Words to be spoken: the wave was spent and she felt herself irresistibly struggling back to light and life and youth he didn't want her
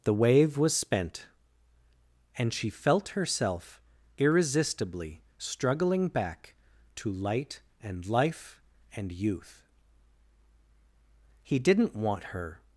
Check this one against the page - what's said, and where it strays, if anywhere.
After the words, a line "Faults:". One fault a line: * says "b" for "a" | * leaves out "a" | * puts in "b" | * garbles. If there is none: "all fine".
the wave was spent and she felt herself irresistibly struggling back to light and life and youth he didn't want her
Faults:
all fine